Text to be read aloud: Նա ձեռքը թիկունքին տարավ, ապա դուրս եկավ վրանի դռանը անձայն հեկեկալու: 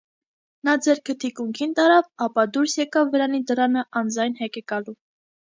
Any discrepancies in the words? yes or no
no